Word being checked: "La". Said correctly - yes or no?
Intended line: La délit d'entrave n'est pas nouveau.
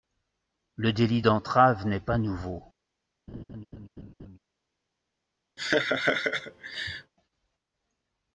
no